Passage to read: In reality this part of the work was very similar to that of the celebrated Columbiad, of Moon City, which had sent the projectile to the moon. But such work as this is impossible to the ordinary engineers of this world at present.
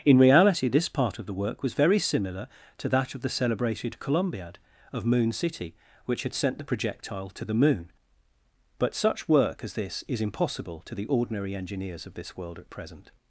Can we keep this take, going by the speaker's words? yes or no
yes